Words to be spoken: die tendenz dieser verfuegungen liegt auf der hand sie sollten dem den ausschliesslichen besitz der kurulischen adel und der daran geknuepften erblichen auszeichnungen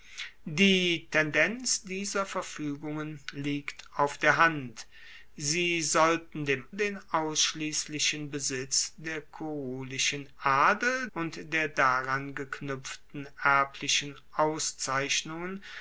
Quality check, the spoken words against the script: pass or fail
pass